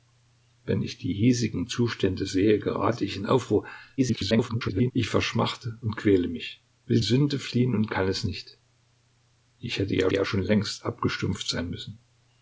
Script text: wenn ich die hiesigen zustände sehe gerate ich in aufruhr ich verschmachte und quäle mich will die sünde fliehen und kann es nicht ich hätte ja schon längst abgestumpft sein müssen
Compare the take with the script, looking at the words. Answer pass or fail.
fail